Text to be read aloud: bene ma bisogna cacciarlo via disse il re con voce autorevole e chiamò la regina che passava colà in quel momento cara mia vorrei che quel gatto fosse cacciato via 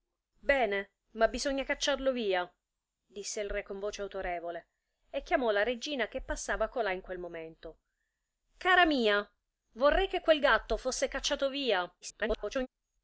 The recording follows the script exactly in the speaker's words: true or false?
false